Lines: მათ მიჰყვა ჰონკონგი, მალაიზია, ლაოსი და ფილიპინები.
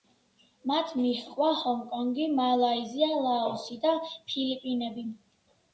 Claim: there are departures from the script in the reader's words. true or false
false